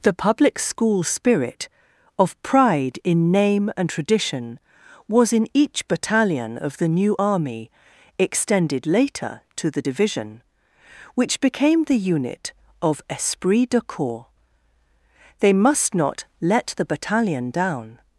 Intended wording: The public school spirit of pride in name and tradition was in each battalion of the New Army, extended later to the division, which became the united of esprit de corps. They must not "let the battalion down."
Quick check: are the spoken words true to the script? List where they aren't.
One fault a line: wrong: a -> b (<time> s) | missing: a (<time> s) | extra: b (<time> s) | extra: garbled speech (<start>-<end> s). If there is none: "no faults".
wrong: united -> unit (12.0 s)